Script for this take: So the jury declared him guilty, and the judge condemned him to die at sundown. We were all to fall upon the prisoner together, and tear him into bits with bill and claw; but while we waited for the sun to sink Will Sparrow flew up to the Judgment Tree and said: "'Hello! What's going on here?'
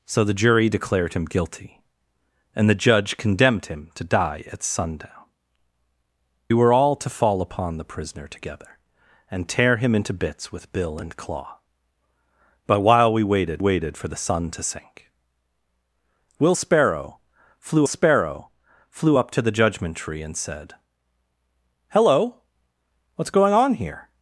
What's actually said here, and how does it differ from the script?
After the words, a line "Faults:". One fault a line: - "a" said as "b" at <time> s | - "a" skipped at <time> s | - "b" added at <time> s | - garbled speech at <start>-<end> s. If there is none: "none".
So the jury declared him guilty, and the judge condemned him to die at sundown. Were all to fall upon the prisoner together, and tear him into bits with bill and claw; but while we waited waited for the sun to sink Will Sparrow flew Sparrow flew up to the Judgment Tree and said: "'Hello! What's going on here?'
Faults:
- "We" skipped at 5.1 s
- "waited" added at 13.6 s
- "Sparrow flew" added at 17.8 s